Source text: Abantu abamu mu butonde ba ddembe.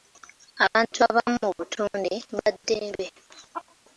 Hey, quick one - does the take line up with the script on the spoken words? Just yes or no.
yes